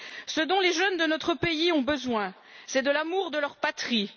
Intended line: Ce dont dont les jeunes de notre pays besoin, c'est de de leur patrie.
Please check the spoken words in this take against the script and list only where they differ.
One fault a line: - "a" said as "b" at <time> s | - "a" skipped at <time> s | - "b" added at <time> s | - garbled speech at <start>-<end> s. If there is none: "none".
- "dont" skipped at 0.6 s
- "ont" added at 1.7 s
- "l'amour" added at 2.9 s